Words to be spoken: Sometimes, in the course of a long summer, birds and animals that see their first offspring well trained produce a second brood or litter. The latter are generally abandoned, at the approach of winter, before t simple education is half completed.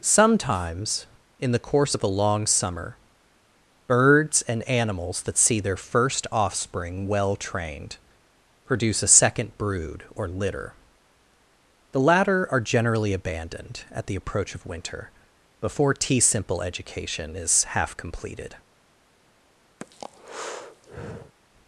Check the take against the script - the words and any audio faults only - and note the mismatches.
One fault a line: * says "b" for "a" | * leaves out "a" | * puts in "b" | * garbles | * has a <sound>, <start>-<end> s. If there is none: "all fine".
* has a breath, 19.8-21.4 s